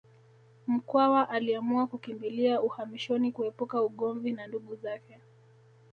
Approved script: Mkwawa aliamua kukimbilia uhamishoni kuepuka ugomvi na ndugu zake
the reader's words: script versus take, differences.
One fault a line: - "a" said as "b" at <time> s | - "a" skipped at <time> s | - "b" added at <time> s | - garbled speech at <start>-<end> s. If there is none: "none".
none